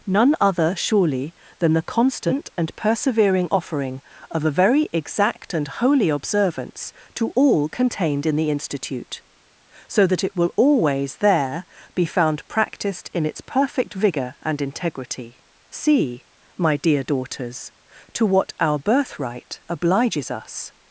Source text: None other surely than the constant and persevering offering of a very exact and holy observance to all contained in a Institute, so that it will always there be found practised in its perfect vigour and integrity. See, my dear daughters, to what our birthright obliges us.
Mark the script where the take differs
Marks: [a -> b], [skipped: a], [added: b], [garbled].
None other surely than the constant and persevering offering of a very exact and holy observance to all contained in [a -> the] Institute, so that it will always there be found practised in its perfect vigour and integrity. See, my dear daughters, to what our birthright obliges us.